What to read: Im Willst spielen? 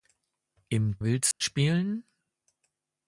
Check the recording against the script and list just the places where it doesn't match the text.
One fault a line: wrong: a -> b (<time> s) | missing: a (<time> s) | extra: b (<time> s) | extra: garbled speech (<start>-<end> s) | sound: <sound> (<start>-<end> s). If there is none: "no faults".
sound: dropout (1.3-1.4 s)